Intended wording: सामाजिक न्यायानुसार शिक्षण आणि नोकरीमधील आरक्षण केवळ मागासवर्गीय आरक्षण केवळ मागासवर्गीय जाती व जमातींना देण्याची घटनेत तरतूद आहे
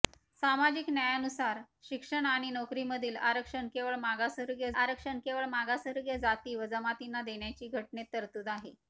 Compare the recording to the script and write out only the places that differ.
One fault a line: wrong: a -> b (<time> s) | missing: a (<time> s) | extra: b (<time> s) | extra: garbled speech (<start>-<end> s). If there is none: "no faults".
no faults